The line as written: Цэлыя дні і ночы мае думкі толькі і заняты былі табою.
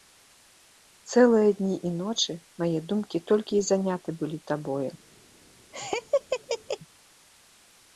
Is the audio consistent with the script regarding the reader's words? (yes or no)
yes